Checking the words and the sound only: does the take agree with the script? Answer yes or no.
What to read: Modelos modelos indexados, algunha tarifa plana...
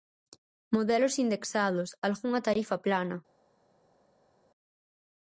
no